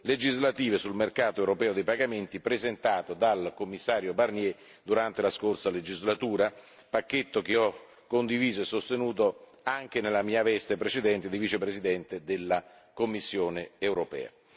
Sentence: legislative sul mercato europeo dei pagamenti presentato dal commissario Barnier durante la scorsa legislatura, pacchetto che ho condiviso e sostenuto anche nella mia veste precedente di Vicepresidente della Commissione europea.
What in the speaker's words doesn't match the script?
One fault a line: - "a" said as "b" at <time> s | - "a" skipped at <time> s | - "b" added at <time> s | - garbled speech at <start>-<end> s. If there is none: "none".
none